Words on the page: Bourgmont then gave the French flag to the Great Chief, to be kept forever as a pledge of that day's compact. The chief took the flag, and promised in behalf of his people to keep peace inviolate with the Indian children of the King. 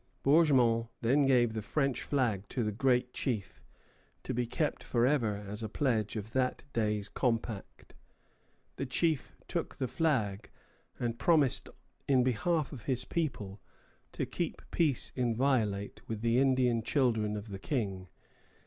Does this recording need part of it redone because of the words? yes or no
no